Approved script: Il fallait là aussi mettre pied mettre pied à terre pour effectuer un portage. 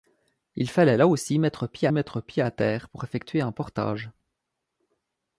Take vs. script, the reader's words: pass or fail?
pass